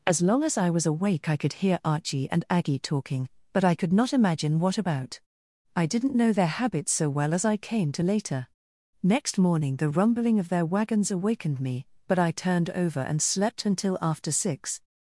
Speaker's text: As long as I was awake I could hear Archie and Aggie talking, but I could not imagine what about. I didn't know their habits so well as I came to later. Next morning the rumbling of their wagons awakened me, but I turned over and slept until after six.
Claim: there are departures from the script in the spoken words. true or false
false